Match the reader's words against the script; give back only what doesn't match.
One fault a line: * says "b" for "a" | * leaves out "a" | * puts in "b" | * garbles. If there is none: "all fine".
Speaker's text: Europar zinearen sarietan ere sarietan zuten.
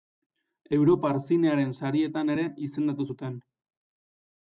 * says "izendatu" for "sarietan"